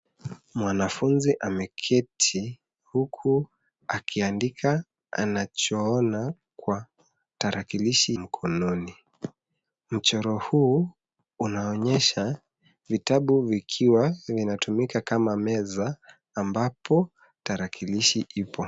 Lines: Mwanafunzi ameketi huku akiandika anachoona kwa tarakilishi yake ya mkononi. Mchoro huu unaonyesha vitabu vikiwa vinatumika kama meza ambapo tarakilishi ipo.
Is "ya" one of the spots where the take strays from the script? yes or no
yes